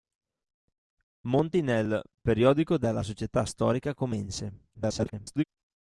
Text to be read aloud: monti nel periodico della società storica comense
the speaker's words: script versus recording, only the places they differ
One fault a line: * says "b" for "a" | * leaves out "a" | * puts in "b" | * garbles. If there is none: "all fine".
* garbles